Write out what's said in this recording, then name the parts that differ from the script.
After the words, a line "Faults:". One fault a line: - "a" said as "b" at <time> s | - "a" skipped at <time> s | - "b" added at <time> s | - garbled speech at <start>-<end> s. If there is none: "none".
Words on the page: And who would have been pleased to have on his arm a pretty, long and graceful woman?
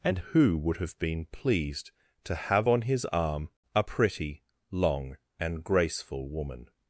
And who would have been pleased to have on his arm a pretty, long and graceful woman?
Faults:
none